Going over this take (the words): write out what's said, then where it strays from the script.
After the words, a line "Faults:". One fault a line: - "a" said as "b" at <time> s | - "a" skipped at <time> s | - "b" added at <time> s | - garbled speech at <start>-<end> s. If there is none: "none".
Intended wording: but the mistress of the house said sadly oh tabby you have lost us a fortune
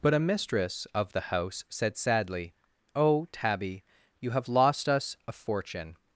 but a mistress of the house said sadly oh tabby you have lost us a fortune
Faults:
- "the" said as "a" at 0.1 s